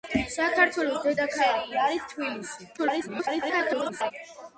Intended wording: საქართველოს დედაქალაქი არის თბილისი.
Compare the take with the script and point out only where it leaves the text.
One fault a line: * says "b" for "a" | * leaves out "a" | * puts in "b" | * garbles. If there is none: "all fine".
* garbles